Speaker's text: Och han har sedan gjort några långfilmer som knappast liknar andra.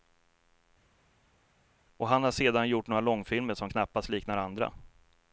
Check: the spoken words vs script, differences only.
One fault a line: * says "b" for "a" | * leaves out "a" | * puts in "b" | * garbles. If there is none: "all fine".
all fine